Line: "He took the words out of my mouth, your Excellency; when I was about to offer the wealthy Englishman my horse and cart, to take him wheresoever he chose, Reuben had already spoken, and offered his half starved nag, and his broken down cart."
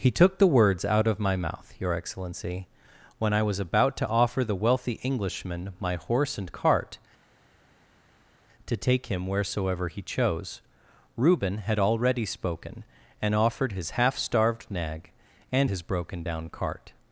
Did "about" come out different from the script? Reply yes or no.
no